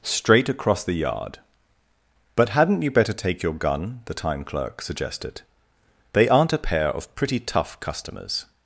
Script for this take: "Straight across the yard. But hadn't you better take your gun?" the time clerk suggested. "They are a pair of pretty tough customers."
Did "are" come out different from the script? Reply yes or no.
yes